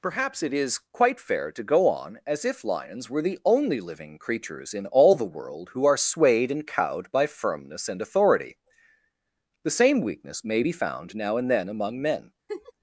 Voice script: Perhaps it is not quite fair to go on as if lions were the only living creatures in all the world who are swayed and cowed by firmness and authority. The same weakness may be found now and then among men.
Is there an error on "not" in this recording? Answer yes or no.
yes